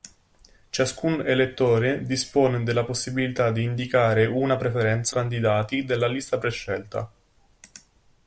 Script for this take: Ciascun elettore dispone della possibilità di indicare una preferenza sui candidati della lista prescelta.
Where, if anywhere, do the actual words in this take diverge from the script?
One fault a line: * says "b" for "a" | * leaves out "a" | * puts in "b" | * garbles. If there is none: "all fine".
* leaves out "sui"